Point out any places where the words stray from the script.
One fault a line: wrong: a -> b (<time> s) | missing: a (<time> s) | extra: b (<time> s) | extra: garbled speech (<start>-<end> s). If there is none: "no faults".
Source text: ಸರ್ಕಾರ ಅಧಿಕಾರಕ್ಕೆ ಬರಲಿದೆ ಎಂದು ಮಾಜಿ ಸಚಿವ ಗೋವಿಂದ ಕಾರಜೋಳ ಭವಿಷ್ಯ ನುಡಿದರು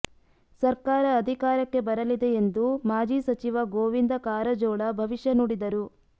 no faults